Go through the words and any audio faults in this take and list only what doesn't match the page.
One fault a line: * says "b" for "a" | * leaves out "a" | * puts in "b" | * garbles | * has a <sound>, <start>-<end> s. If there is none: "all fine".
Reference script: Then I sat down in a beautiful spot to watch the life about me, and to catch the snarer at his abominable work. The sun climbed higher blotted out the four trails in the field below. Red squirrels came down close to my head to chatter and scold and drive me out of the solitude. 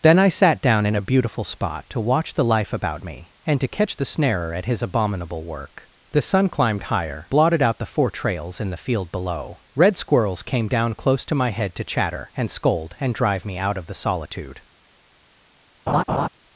* has a laugh, 15.9-16.3 s